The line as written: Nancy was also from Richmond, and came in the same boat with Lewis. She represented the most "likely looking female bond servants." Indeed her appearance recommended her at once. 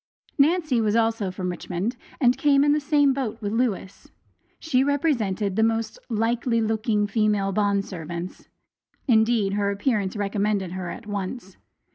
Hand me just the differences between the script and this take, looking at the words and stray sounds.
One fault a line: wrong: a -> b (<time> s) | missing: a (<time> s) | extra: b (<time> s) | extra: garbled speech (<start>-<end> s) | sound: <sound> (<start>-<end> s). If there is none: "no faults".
no faults